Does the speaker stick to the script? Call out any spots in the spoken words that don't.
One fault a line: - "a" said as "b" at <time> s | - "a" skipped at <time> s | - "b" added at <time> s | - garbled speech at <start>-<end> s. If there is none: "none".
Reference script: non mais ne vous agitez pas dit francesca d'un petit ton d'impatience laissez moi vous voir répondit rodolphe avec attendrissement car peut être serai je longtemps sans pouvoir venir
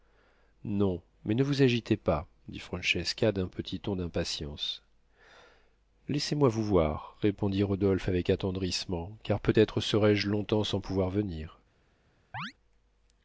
none